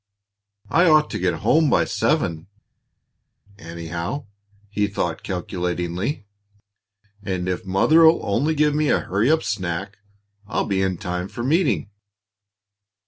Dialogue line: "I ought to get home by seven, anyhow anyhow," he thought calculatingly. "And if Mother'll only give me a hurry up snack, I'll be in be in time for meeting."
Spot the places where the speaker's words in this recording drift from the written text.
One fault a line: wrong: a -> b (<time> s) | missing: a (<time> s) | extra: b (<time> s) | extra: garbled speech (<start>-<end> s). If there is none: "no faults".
missing: anyhow (4.2 s)
missing: be in (11.0 s)